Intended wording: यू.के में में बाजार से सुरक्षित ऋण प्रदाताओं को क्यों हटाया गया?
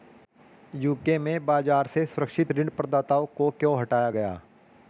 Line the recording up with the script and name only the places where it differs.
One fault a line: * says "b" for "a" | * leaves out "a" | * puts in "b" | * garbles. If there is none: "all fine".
* leaves out "में"